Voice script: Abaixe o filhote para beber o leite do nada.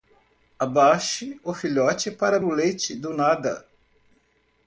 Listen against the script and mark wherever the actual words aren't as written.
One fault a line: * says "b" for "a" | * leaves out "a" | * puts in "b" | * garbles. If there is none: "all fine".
* leaves out "beber"